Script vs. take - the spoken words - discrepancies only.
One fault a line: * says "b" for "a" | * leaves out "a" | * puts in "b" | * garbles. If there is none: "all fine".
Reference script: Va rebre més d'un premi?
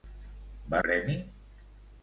* leaves out "rebre més d'un"